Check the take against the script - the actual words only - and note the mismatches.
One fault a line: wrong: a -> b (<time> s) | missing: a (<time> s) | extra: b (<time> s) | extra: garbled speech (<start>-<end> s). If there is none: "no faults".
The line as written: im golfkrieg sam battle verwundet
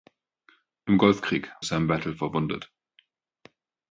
no faults